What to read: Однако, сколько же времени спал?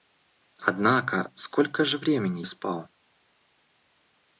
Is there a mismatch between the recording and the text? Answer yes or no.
no